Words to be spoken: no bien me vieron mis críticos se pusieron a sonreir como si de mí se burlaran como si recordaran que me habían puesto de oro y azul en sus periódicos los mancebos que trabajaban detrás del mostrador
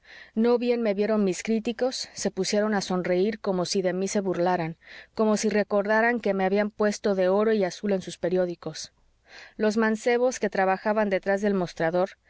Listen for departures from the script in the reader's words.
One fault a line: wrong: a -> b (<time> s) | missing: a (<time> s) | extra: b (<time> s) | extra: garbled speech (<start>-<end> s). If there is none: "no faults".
no faults